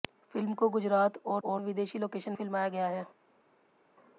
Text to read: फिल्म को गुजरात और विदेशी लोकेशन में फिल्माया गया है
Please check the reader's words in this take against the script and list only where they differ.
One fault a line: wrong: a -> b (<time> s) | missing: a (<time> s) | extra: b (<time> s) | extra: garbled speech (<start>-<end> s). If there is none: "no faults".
extra: और (1.4 s)
missing: में (2.3 s)